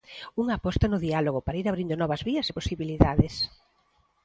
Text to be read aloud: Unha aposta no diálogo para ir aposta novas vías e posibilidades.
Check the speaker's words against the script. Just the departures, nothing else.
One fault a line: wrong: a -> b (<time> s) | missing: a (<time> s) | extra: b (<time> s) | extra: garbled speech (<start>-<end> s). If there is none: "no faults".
wrong: aposta -> abrindo (1.7 s)